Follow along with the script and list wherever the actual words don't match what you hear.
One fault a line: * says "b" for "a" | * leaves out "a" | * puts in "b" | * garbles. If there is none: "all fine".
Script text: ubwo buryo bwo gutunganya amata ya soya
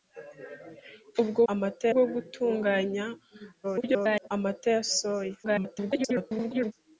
* says "amata" for "buryo"
* garbles
* garbles